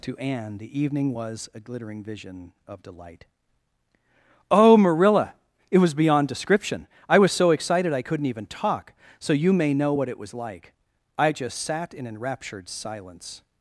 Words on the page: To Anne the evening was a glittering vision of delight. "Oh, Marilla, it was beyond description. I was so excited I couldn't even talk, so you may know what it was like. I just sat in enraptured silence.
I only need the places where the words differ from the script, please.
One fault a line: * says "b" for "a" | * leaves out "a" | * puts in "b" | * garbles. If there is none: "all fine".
all fine